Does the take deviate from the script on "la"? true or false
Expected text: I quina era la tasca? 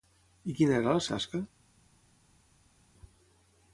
false